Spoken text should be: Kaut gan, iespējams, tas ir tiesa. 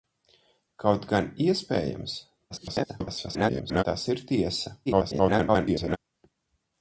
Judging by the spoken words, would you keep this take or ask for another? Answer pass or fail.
fail